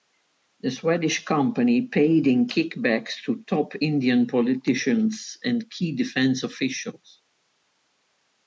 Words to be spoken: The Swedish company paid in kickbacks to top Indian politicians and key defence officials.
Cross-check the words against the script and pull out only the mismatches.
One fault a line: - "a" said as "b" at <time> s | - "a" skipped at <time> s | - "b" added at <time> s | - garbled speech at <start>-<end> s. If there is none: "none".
none